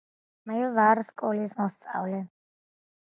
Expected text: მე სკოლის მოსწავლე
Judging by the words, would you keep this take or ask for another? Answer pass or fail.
fail